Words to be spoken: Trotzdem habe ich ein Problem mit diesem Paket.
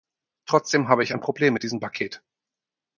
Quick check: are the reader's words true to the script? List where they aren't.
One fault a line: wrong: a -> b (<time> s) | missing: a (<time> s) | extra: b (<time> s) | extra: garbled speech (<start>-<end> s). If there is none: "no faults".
no faults